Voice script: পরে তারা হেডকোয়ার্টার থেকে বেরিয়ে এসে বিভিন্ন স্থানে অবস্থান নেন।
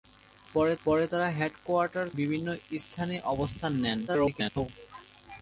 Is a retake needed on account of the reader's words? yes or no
yes